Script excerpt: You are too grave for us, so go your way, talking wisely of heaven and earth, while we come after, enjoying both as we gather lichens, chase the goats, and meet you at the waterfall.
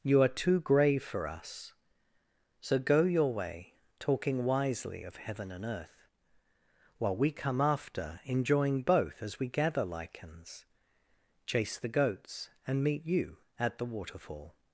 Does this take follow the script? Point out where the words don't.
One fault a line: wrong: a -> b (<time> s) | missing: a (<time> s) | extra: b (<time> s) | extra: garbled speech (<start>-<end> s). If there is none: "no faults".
no faults